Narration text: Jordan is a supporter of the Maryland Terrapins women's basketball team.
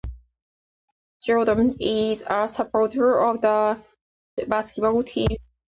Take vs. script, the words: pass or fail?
fail